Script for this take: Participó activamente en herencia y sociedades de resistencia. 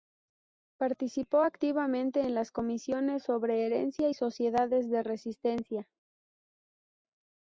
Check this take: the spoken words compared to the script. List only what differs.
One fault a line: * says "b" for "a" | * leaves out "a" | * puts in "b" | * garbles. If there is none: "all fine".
* puts in "las comisiones sobre"